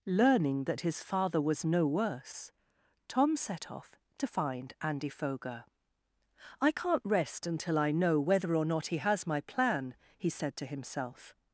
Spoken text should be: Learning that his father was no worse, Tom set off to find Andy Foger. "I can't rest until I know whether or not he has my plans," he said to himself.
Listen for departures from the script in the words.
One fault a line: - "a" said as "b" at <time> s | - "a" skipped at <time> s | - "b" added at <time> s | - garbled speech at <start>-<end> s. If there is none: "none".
- "plans" said as "plan" at 9.4 s